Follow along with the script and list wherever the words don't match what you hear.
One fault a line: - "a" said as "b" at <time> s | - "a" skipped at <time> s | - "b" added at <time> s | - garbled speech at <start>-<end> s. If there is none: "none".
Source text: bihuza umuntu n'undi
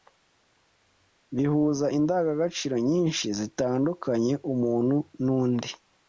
- "indangagaciro nyinshi zitandukanya" added at 2.0 s